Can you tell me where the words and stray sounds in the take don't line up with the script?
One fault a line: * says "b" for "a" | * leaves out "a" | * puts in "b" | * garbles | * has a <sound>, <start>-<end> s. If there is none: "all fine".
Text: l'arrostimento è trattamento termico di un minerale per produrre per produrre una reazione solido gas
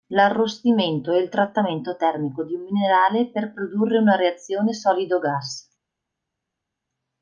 * puts in "il"
* leaves out "per produrre"